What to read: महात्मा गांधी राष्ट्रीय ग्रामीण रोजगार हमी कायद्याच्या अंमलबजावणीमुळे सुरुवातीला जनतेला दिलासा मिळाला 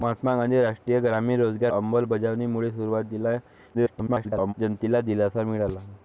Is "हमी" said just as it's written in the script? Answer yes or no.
no